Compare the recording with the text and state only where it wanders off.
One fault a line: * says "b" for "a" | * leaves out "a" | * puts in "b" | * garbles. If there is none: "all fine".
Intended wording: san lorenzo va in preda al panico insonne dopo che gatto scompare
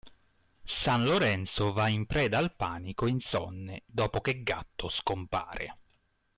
all fine